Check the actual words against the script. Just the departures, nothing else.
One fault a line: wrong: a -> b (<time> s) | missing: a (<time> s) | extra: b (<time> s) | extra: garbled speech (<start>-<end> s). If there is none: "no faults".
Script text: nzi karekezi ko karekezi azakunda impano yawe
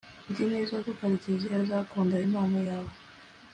wrong: karekezi -> neza (0.5 s)